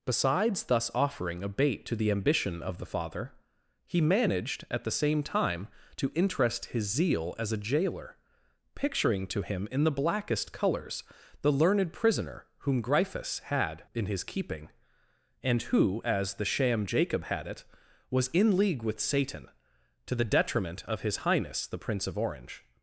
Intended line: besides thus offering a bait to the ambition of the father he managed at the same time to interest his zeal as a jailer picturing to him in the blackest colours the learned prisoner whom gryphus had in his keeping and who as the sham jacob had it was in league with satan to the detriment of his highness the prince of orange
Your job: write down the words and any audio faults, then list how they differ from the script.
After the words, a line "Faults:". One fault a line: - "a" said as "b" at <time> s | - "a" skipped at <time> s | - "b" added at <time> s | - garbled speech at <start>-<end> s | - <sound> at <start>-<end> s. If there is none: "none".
besides thus offering a bait to the ambition of the father he managed at the same time to interest his zeal as a jailer picturing to him in the blackest colours the learned prisoner whom gryphus had in his keeping and who as the sham jacob had it was in league with satan to the detriment of his highness the prince of orange
Faults:
none